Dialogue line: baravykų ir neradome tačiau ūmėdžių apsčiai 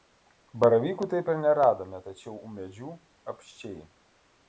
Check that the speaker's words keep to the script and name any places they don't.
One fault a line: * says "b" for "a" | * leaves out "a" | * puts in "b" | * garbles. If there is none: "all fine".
* puts in "taip"